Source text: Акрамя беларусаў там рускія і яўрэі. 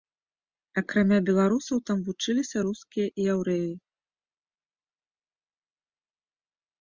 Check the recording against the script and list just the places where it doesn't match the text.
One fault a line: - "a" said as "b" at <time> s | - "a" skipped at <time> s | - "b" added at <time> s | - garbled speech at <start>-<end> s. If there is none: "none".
- "вучыліся" added at 2.1 s